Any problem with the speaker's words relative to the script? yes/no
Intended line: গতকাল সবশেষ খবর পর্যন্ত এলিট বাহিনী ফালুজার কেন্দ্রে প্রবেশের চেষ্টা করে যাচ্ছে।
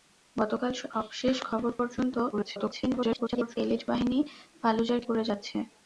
yes